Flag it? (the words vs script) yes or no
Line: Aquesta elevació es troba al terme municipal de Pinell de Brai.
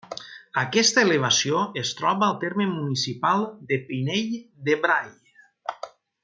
no